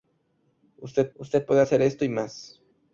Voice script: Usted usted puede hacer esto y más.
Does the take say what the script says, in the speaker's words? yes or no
yes